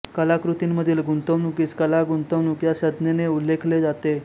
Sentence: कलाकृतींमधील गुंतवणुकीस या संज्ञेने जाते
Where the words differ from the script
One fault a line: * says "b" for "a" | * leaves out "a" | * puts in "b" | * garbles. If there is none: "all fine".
* puts in "कला गुंतवणूक"
* puts in "उल्लेखले"